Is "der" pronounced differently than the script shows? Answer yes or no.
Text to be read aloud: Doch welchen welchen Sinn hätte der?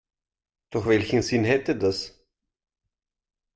yes